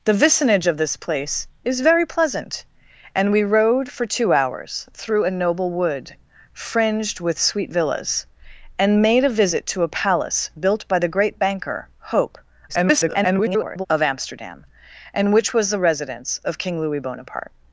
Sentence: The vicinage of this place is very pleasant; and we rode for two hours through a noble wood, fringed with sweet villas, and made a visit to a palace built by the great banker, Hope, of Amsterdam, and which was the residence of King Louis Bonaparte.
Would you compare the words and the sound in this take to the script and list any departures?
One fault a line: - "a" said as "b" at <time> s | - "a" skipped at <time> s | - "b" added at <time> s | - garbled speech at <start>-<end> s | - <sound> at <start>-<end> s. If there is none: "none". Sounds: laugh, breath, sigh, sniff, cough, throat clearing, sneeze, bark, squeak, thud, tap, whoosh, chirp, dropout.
- garbled speech at 12.7-13.9 s